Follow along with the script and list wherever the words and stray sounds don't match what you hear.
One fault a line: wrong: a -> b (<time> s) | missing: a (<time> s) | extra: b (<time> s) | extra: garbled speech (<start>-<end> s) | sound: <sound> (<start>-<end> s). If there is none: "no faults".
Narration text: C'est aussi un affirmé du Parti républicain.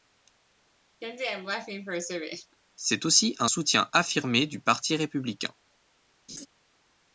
sound: laugh (1.0-2.6 s)
extra: soutien (3.4 s)
sound: laugh (6.3-6.5 s)